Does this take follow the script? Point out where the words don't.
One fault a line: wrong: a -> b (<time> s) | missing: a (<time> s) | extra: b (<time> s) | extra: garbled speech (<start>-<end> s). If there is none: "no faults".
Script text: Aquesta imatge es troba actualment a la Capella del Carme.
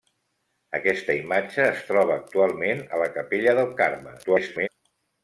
extra: garbled speech (4.2-4.7 s)